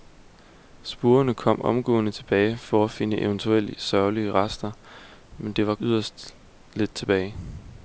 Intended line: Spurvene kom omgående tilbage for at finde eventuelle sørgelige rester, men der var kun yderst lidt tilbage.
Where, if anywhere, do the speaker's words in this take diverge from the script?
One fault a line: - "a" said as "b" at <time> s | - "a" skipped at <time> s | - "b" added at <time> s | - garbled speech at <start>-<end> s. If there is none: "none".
- "kun" skipped at 5.8 s